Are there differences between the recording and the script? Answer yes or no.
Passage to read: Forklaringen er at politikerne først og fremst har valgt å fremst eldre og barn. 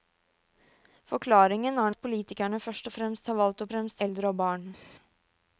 no